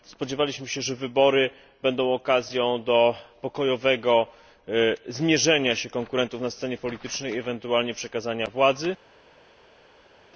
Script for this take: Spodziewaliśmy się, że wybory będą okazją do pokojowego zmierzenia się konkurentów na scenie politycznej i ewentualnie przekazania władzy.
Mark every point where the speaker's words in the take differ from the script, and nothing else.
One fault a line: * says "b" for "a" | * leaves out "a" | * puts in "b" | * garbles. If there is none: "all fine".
all fine